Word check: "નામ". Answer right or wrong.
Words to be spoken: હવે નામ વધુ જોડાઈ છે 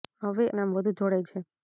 right